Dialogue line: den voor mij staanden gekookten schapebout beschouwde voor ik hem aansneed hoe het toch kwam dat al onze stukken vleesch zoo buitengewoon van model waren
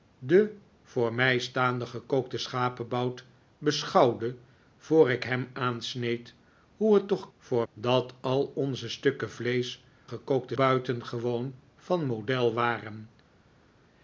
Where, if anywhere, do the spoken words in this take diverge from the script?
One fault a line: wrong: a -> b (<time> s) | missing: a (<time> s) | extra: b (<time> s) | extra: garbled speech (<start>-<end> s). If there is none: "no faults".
wrong: kwam -> voor (7.4 s)
wrong: zoo -> gekookten (10.0 s)